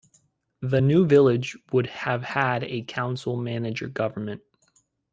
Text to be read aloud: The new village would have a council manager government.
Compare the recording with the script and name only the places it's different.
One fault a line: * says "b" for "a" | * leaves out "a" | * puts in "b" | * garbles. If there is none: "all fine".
* puts in "had"